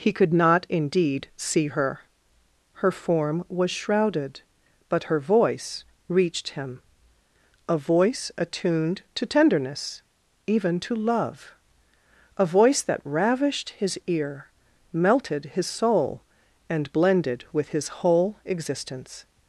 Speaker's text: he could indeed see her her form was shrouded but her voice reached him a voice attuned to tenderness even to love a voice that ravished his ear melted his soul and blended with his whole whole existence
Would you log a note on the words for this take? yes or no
yes